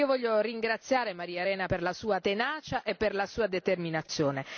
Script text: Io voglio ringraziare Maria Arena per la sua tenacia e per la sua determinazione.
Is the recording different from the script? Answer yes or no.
no